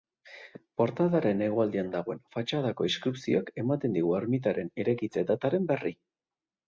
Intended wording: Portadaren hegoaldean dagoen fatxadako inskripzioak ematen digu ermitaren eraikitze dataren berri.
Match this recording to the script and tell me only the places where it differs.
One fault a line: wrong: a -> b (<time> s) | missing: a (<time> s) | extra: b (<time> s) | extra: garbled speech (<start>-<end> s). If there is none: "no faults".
no faults